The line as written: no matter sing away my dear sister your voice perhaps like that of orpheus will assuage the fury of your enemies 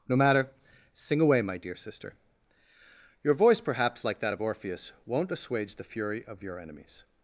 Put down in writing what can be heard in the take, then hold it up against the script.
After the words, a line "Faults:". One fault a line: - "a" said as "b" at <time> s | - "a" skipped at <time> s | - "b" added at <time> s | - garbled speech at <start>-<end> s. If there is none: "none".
no matter sing away my dear sister your voice perhaps like that of orpheus won't assuage the fury of your enemies
Faults:
- "will" said as "won't" at 5.1 s